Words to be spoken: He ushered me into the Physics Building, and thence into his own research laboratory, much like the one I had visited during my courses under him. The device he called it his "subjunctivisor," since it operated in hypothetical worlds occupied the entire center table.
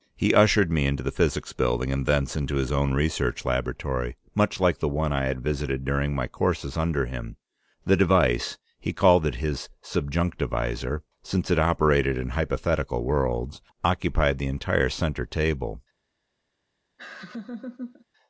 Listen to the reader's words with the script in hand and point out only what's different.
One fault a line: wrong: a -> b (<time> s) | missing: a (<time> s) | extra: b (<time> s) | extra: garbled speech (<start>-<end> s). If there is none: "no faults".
no faults